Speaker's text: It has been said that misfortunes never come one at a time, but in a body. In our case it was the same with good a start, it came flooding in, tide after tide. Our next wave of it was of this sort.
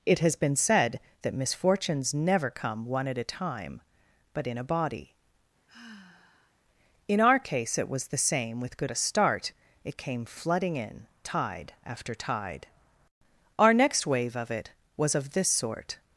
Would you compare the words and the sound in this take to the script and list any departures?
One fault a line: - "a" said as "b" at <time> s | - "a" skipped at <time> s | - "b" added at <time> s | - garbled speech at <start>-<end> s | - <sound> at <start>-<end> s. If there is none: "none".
- sigh at 5.7-6.5 s